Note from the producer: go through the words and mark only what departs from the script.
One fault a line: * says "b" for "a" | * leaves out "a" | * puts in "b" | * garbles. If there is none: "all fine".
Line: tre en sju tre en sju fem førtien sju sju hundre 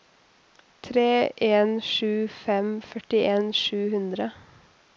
* leaves out "tre en sju"
* leaves out "sju"